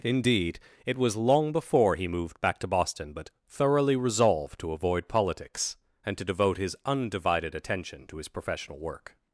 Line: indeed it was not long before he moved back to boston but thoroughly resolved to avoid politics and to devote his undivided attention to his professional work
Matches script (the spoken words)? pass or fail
fail